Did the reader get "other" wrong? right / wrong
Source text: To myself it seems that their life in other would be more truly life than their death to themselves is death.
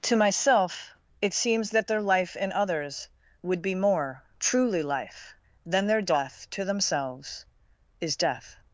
wrong